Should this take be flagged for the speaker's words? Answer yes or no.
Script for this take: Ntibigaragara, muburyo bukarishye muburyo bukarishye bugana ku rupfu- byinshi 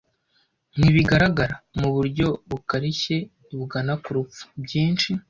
yes